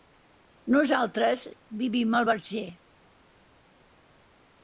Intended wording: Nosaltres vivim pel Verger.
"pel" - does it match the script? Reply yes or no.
no